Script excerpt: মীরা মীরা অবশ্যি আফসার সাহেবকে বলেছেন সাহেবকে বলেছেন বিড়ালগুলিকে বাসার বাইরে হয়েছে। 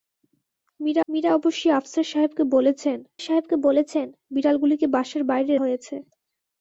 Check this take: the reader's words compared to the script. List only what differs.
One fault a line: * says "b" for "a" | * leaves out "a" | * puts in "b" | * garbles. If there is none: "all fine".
all fine